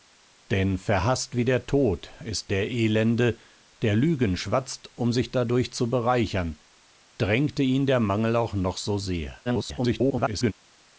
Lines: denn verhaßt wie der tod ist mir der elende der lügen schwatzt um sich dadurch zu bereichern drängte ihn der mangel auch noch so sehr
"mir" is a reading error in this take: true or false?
true